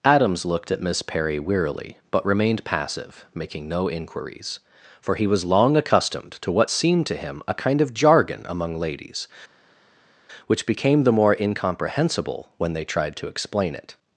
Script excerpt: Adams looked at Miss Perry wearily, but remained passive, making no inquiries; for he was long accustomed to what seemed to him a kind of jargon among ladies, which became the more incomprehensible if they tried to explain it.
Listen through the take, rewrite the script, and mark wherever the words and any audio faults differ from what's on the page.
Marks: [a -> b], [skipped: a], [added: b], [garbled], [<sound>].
Adams looked at Miss Perry wearily, but remained passive, making no inquiries; for he was long accustomed to what seemed to him a kind of jargon among ladies, which became the more incomprehensible [if -> when] they tried to explain it.